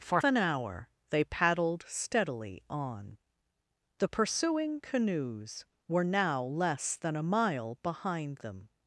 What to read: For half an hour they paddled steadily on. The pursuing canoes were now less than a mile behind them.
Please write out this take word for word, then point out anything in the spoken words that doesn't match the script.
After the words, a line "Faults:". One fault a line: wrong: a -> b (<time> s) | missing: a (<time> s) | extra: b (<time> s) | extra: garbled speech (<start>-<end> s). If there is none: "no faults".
For an hour they paddled steadily on. The pursuing canoes were now less than a mile behind them.
Faults:
missing: half (0.2 s)